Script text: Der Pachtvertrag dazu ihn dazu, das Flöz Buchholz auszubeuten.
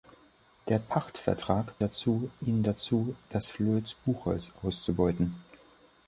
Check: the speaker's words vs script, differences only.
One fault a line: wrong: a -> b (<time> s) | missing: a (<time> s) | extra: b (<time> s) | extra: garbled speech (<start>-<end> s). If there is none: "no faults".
no faults